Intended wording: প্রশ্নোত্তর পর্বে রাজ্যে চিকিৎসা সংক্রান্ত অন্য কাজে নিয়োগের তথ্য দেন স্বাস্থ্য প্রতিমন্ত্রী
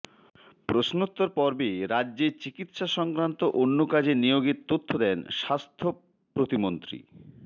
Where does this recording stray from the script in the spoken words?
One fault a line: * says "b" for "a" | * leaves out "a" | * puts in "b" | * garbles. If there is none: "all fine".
all fine